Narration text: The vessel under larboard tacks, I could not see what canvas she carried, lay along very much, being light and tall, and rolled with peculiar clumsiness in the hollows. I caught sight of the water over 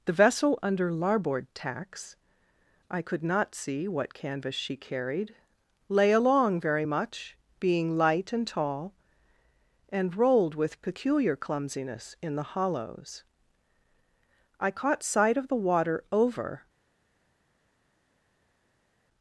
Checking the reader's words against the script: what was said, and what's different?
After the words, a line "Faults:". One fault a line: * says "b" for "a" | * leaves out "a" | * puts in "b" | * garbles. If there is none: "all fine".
The vessel under larboard tacks, I could not see what canvas she carried, lay along very much, being light and tall, and rolled with peculiar clumsiness in the hollows. I caught sight of the water over
Faults:
all fine